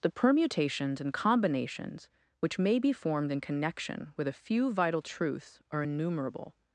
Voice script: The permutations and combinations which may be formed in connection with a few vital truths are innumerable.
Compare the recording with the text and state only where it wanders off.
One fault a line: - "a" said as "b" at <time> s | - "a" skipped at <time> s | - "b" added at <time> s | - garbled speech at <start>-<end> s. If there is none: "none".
none